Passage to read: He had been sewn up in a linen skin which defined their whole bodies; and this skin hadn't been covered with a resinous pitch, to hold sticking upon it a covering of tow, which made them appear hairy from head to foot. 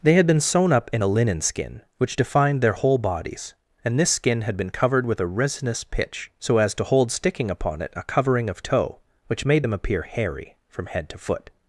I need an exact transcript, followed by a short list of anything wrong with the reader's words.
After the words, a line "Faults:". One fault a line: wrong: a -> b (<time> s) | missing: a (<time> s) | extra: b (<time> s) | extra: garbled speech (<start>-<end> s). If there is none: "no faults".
They had been sewn up in a linen skin which defined their whole bodies; and this skin had been covered with a resinous pitch, so as to hold sticking upon it a covering of tow, which made them appear hairy from head to foot.
Faults:
wrong: He -> They (0.0 s)
wrong: hadn't -> had (4.4 s)
extra: so as (6.4 s)